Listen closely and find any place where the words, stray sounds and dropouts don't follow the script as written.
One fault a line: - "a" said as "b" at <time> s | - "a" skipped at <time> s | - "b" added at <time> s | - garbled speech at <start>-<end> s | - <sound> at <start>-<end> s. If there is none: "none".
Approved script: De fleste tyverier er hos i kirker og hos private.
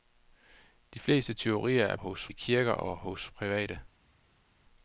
none